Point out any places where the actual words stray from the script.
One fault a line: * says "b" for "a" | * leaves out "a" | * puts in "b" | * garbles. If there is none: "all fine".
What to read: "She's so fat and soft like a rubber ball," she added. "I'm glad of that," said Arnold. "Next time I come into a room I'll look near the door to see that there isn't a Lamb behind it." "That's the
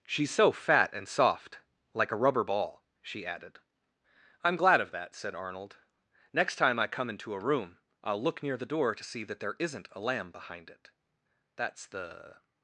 all fine